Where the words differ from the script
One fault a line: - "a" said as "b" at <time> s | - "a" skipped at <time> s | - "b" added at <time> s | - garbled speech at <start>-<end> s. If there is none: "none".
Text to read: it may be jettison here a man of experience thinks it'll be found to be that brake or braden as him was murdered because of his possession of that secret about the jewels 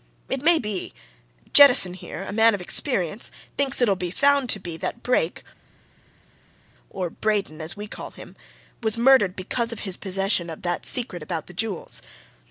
- "we call" added at 7.7 s